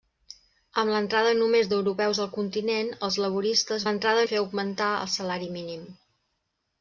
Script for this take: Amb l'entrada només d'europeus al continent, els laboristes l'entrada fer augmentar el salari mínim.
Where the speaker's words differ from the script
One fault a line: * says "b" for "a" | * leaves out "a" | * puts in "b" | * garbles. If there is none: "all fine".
all fine